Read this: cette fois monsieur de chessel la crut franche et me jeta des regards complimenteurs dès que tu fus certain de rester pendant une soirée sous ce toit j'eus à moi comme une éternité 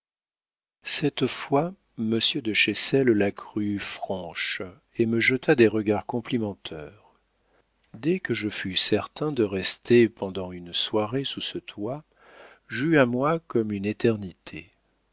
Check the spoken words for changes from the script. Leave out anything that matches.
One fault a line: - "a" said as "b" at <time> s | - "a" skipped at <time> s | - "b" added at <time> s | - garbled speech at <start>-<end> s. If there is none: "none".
- "tu" said as "je" at 8.3 s